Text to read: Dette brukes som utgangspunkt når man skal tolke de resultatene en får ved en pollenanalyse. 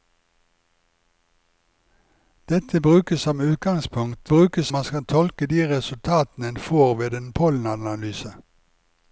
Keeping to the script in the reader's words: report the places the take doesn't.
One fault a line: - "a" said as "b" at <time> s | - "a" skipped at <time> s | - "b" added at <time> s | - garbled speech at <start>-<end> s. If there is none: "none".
- "når" said as "brukes" at 4.3 s